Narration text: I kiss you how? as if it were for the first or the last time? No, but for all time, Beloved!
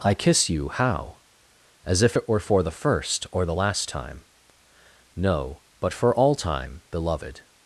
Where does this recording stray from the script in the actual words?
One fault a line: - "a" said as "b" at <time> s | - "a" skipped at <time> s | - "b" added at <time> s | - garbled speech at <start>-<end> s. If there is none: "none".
none